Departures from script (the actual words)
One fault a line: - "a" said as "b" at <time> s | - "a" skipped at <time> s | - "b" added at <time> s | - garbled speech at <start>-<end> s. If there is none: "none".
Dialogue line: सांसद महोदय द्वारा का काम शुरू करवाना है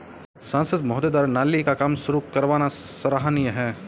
- "नाली" added at 1.3 s
- "सराहनीय" added at 2.7 s